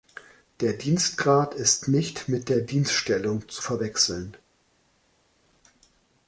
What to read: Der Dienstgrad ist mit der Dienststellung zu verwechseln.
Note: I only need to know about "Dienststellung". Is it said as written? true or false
true